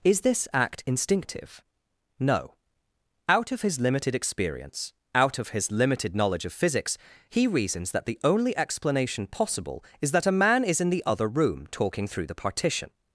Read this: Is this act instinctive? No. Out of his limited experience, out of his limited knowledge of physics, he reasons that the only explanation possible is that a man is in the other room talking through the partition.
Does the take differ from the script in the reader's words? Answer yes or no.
no